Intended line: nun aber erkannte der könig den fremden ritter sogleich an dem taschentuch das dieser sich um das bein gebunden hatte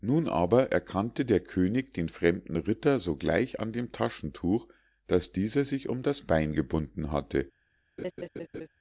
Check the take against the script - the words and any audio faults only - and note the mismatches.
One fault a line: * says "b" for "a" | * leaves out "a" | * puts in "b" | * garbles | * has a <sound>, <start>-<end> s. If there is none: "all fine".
* has a laugh, 8.0-8.7 s